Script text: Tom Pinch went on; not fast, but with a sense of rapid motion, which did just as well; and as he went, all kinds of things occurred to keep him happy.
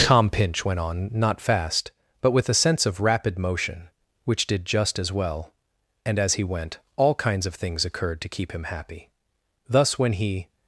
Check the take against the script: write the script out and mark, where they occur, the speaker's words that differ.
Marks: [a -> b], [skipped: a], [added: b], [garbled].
Tom Pinch went on; not fast, but with a sense of rapid motion, which did just as well; and as he went, all kinds of things occurred to keep him happy. [added: Thus when he]